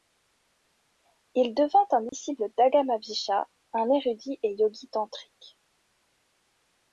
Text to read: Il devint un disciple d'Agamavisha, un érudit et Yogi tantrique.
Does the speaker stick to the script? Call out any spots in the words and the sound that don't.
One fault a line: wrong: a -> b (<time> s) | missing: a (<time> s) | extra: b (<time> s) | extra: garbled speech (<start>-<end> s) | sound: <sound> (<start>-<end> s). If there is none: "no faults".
sound: dropout (2.1-2.1 s)